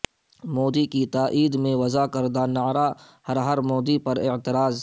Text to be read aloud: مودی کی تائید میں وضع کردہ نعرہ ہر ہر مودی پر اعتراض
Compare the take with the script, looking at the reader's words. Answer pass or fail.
pass